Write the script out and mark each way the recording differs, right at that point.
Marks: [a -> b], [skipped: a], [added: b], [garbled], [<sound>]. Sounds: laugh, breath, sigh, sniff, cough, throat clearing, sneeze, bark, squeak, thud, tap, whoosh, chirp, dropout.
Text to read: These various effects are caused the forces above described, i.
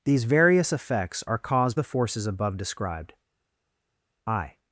These various effects are caused the forces above described, i.